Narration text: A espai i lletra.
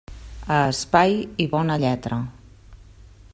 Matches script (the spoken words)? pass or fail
fail